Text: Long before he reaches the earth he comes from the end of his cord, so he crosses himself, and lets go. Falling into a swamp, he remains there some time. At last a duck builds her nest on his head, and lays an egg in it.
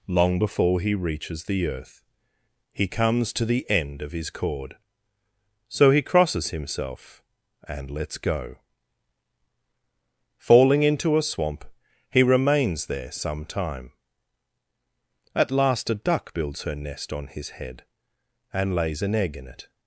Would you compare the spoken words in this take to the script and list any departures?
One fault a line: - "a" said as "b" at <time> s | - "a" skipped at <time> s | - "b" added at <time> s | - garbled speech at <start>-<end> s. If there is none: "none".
- "from" said as "to" at 3.3 s